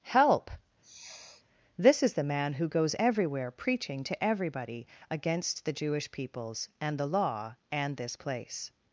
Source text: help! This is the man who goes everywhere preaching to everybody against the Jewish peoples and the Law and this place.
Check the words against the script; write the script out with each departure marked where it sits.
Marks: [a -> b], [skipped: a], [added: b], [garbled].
help! This is the man who goes everywhere preaching to everybody against the Jewish peoples and the Law and this place.